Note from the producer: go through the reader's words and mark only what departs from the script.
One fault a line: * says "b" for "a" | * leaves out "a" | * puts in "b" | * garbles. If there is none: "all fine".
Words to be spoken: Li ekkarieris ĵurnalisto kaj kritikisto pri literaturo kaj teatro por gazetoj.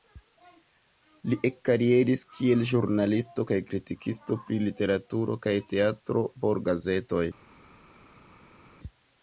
* puts in "kiel"